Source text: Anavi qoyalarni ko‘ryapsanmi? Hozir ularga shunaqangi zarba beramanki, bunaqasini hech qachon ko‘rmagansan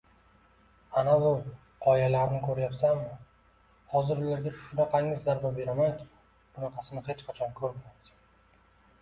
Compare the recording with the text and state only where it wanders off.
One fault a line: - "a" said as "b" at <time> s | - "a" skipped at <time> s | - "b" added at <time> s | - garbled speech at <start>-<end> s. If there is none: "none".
none